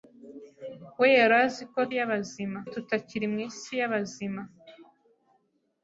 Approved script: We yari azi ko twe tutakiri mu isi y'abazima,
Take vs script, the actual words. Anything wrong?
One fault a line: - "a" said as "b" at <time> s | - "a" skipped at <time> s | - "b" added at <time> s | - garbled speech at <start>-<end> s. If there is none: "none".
- "twe" said as "y'abazima" at 2.0 s